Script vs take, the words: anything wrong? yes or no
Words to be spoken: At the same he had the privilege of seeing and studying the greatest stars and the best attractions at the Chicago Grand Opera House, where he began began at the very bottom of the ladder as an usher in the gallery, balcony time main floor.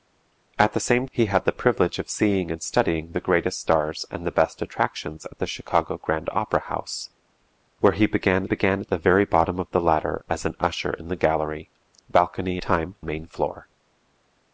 no